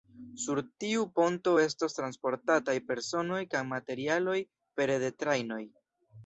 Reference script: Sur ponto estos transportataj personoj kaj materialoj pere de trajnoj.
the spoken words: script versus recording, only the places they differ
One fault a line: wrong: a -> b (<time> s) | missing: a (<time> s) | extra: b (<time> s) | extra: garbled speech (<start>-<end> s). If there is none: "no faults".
extra: tiu (0.8 s)